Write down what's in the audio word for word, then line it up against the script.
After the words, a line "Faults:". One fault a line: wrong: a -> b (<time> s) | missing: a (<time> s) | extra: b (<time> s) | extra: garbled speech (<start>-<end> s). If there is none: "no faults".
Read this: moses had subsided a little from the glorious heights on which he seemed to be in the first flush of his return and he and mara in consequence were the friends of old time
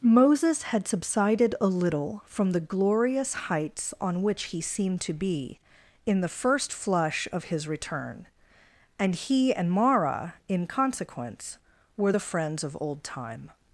moses had subsided a little from the glorious heights on which he seemed to be in the first flush of his return and he and mara in consequence were the friends of old time
Faults:
no faults